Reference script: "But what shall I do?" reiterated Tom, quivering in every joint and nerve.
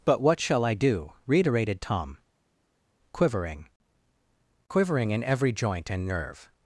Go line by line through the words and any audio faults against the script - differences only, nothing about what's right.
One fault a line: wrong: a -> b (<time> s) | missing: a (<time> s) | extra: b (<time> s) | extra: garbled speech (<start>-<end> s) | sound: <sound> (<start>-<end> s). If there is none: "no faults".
extra: quivering (4.7 s)